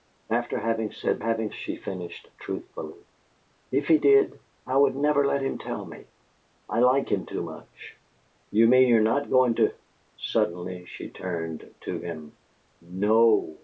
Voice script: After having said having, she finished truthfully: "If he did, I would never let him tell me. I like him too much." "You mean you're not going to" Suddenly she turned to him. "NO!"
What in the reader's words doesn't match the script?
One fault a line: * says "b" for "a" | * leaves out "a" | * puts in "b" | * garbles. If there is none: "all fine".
all fine